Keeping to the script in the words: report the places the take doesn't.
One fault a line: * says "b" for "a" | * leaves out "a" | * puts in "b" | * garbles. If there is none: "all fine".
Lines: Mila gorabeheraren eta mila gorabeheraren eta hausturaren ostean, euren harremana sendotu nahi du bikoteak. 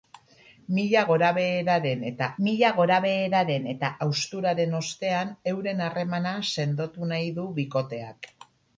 all fine